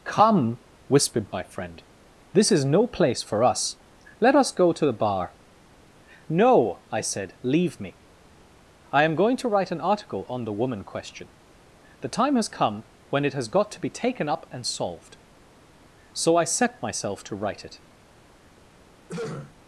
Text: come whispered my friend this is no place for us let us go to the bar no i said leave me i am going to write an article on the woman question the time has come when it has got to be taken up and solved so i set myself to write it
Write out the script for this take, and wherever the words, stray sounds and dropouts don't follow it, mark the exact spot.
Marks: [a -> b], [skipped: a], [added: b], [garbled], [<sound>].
come whispered my friend this is no place for us let us go to the bar no i said leave me i am going to write an article on the woman question the time has come when it has got to be taken up and solved so i set myself to write it [throat clearing]